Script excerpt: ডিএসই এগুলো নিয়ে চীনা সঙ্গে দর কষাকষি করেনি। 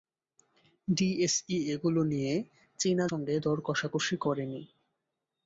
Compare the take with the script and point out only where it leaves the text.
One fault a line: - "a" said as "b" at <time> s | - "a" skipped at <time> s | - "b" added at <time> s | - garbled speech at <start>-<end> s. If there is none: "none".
none